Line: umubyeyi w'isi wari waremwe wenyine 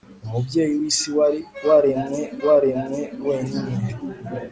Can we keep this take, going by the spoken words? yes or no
no